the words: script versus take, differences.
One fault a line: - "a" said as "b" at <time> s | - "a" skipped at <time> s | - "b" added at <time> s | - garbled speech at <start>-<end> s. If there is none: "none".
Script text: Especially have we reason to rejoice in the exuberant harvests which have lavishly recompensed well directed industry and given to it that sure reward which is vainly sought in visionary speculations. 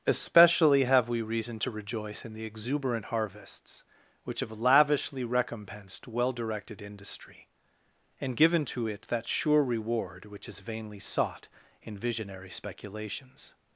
none